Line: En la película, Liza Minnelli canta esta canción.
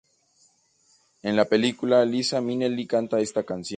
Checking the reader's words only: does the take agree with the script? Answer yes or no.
yes